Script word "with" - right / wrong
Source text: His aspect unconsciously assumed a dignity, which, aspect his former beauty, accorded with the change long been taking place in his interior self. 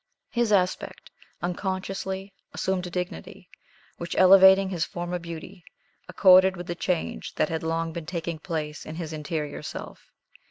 right